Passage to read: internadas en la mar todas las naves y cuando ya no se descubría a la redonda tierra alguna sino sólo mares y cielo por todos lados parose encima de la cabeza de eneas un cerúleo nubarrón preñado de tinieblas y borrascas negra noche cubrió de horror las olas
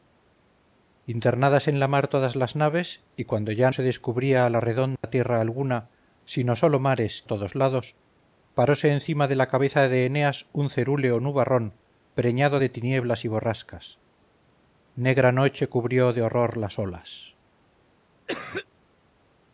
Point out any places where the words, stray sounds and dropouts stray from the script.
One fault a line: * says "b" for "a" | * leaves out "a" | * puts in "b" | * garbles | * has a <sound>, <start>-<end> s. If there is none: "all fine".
* leaves out "no"
* has a dropout, 5.0-5.0 s
* leaves out "y cielo por"
* has a cough, 18.3-18.7 s